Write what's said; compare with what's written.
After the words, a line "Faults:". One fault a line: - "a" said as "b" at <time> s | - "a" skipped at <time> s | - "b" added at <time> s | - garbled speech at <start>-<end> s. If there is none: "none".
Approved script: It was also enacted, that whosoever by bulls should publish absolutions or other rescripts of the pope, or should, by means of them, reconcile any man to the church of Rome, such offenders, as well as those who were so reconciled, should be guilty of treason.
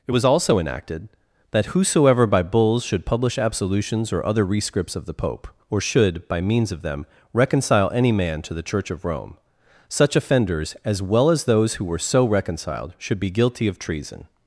It was also enacted, that whosoever by bulls should publish absolutions or other rescripts of the pope, or should, by means of them, reconcile any man to the church of Rome, such offenders, as well as those who were so reconciled, should be guilty of treason.
Faults:
none